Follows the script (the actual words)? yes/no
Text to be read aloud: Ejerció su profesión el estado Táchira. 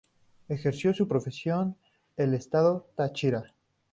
yes